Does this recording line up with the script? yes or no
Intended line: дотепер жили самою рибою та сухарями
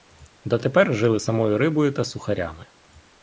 yes